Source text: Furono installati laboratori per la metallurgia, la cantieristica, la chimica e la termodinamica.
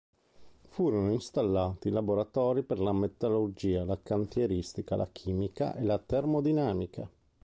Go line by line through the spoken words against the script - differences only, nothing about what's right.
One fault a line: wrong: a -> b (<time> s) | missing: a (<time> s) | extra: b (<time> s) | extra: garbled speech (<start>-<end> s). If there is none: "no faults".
no faults